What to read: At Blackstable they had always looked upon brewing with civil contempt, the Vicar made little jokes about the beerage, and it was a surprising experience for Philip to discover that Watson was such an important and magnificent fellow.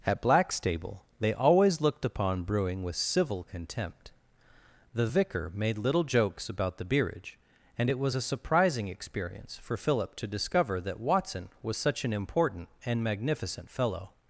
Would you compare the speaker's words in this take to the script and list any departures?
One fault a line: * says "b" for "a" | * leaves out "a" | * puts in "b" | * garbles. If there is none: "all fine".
* leaves out "had"